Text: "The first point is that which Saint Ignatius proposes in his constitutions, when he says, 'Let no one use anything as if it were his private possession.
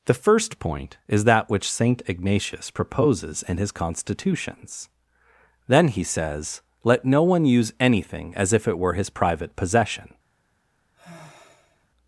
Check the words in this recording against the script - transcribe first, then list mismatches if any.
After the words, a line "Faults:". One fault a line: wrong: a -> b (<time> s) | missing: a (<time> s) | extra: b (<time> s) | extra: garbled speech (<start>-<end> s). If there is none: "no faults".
"The first point is that which Saint Ignatius proposes in his constitutions, then he says, 'Let no one use anything as if it were his private possession.
Faults:
wrong: when -> then (5.7 s)